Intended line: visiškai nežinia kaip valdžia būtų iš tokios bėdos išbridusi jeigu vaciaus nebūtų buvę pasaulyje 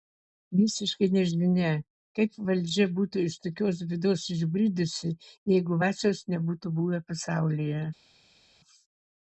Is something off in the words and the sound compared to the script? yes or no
no